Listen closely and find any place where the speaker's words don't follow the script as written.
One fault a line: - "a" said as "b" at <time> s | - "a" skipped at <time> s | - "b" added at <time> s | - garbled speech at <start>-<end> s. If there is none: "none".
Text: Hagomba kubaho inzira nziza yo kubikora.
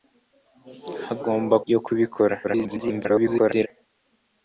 - "kubaho inzira nziza" skipped at 1.6 s
- garbled speech at 2.4-3.7 s